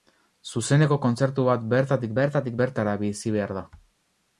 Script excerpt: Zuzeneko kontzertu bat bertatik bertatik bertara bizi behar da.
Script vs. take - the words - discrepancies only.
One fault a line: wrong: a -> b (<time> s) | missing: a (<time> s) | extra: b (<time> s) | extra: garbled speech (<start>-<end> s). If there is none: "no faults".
no faults